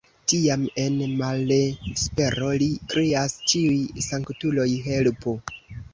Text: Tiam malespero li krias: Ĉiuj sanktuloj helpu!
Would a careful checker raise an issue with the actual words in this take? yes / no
yes